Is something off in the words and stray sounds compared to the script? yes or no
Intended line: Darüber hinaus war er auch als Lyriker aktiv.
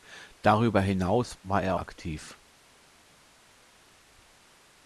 yes